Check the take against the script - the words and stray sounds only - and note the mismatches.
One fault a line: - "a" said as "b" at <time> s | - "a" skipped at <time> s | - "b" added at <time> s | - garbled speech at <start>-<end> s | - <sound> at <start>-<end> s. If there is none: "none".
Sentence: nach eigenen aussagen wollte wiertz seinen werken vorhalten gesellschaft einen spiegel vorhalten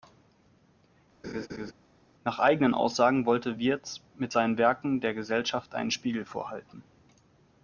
- laugh at 1.2-1.7 s
- "mit" added at 4.2 s
- "vorhalten" said as "der" at 5.0 s